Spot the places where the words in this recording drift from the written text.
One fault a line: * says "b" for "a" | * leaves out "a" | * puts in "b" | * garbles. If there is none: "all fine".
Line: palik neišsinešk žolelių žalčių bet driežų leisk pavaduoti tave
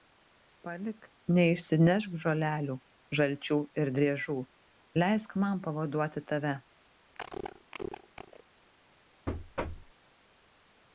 * says "ir" for "bet"
* puts in "man"